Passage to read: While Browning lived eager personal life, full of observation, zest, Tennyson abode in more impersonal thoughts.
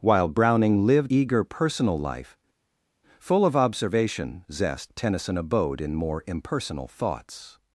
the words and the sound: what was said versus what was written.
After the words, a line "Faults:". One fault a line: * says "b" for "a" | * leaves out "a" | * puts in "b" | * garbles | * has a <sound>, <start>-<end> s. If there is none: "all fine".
While Browning lived eager personal life, full of observation, zest, Tennyson abode in more impersonal thoughts.
Faults:
all fine